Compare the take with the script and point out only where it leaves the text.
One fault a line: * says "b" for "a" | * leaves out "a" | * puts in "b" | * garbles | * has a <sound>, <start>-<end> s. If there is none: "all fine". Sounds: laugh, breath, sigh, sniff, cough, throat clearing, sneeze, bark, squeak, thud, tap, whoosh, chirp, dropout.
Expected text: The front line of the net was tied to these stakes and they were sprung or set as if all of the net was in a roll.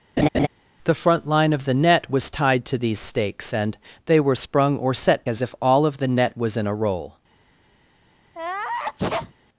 * has a laugh, 0.2-0.5 s
* has a sneeze, 8.3-9.3 s